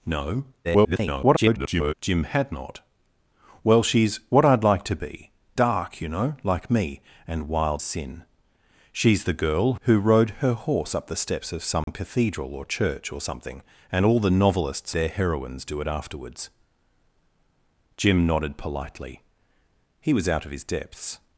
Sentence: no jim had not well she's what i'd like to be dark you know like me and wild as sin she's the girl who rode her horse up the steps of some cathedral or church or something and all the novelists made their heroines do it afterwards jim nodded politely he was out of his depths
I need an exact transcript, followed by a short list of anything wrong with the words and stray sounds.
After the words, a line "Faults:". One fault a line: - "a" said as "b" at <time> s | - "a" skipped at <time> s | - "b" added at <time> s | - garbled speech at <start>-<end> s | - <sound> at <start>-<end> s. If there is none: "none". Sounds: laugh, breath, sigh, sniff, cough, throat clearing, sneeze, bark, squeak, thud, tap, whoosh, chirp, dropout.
no [garbled] jim had not well she's what i'd like to be dark you know like me and wild sin she's the girl who rode her horse up the steps of some cathedral or church or something and all the novelists their heroines do it afterwards jim nodded politely he was out of his depths
Faults:
- garbled speech at 0.6-1.9 s
- "as" skipped at 7.8 s
- dropout at 11.8-11.9 s
- "made" skipped at 15.0 s